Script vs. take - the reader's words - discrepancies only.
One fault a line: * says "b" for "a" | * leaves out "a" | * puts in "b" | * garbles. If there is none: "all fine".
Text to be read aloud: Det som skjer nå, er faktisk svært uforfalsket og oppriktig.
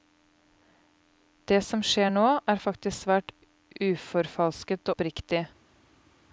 * leaves out "og"